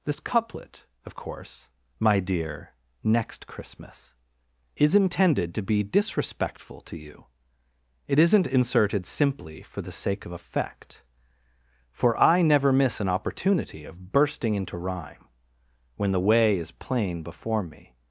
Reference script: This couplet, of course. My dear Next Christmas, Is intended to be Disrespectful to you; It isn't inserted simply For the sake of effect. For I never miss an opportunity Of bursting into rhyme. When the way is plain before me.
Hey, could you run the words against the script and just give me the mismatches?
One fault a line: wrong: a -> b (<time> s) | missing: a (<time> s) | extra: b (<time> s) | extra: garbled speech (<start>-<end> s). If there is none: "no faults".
no faults